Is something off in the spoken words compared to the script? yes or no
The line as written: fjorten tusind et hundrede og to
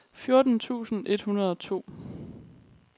no